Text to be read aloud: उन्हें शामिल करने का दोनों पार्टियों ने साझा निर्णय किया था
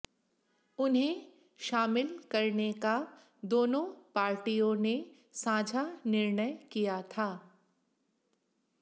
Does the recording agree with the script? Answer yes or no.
yes